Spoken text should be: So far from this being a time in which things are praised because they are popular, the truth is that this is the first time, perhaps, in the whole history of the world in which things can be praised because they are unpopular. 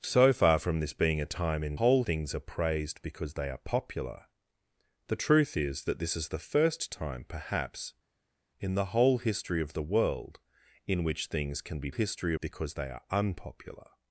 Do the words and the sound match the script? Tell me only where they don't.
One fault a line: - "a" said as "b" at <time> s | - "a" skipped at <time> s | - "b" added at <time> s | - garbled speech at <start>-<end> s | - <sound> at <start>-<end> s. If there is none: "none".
- "which" said as "whole" at 1.8 s
- "praised" said as "history" at 11.9 s